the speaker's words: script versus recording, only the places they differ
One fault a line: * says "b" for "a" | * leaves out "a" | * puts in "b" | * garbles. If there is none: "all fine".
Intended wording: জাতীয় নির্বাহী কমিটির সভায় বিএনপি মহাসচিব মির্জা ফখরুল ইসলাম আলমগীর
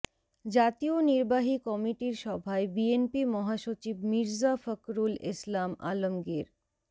all fine